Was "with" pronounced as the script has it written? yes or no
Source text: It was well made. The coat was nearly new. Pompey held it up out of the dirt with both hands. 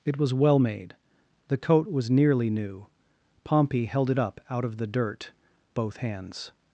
no